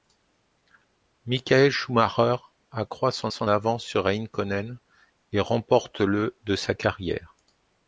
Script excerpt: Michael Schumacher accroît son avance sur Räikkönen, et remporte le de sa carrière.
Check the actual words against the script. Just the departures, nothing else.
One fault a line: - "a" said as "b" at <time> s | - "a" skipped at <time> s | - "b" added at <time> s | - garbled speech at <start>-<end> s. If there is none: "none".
- "son" added at 3.3 s